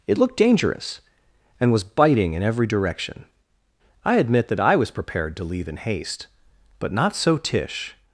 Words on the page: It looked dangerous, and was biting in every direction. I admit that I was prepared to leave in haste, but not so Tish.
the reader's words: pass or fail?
pass